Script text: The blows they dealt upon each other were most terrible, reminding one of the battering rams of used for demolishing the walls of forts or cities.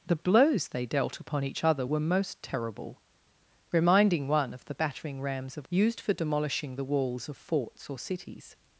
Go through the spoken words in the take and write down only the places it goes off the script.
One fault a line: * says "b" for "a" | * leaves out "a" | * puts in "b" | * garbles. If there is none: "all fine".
all fine